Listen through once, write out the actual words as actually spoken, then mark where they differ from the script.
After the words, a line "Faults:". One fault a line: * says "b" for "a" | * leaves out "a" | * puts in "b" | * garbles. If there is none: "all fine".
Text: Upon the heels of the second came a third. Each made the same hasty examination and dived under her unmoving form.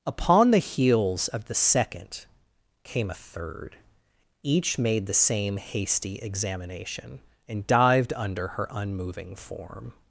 Upon the heels of the second came a third. Each made the same hasty examination and dived under her unmoving form.
Faults:
all fine